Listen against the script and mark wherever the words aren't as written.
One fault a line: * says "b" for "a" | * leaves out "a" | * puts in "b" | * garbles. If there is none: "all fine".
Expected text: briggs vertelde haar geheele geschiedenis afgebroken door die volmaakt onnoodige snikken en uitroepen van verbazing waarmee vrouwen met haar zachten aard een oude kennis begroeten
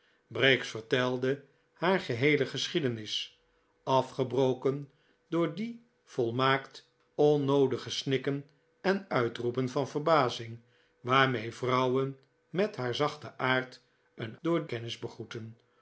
* says "door" for "oude"